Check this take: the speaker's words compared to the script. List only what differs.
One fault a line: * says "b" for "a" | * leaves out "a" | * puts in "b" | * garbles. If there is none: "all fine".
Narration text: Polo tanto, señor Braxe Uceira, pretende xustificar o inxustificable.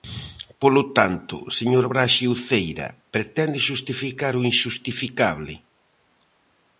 all fine